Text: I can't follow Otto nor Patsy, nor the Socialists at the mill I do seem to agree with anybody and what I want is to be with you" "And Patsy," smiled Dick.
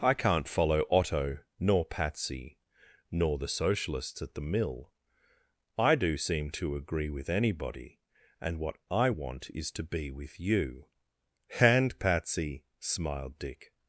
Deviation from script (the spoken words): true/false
false